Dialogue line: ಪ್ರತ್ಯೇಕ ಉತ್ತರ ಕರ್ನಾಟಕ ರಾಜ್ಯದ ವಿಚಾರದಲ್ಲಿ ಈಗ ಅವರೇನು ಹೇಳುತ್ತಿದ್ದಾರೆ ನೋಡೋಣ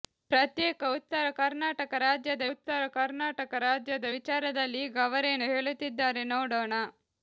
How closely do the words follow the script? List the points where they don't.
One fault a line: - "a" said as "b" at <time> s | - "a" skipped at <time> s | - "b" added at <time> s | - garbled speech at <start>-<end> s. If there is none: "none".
- "ಉತ್ತರ ಕರ್ನಾಟಕ ರಾಜ್ಯದ" added at 2.5 s